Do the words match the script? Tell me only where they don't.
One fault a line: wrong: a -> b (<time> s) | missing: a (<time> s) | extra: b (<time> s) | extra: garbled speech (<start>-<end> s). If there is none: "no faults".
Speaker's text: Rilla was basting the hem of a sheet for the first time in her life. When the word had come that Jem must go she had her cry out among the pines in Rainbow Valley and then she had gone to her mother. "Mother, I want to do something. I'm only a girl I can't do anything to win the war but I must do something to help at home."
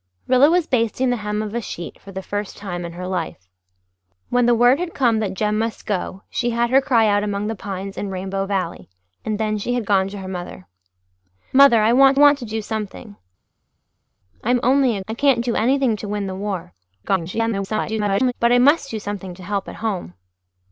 extra: want (12.1 s)
missing: girl (15.0 s)
extra: garbled speech (17.0-18.3 s)